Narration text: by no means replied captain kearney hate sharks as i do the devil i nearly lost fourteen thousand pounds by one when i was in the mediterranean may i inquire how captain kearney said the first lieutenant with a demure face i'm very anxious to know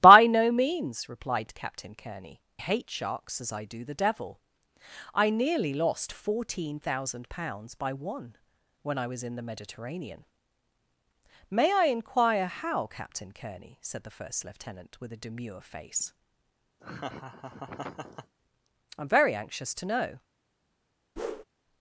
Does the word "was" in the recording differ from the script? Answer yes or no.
no